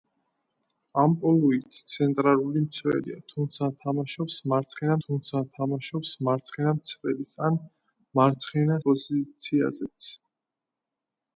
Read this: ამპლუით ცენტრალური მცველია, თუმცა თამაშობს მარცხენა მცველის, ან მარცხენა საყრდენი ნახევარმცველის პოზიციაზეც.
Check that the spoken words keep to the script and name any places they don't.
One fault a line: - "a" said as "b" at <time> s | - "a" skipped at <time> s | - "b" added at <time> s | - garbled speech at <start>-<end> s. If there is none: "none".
- "თუმცა თამაშობს მარცხენა" added at 5.0 s
- "საყრდენი ნახევარმცველის" skipped at 8.8 s